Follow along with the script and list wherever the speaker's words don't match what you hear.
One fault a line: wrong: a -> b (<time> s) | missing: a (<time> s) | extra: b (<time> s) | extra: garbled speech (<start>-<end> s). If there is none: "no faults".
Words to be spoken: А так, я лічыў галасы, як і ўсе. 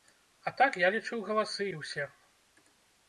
missing: як (1.7 s)